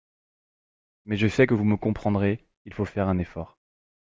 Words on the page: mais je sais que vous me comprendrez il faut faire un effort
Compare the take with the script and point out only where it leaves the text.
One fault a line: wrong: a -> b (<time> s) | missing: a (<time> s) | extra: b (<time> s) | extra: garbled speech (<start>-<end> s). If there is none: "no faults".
no faults